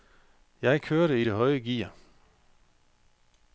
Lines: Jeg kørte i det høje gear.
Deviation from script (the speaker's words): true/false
false